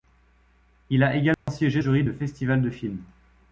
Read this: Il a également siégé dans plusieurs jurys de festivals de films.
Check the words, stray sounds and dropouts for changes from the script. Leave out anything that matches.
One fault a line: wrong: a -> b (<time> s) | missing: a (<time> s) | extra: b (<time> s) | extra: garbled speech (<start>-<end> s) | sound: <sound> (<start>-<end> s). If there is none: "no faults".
sound: dropout (1.3-1.5 s)
missing: dans plusieurs (1.8 s)